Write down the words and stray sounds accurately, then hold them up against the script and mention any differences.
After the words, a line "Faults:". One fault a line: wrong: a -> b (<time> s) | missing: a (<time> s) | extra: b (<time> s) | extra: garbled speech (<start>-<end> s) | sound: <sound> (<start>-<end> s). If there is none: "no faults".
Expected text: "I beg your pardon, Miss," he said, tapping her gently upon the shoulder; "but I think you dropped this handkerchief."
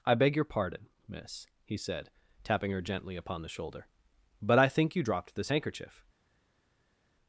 "I beg your pardon, Miss," he said, tapping her gently upon the shoulder; "but I think you dropped this handkerchief."
Faults:
no faults